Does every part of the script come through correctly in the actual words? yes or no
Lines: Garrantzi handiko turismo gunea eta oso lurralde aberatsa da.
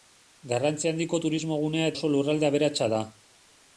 no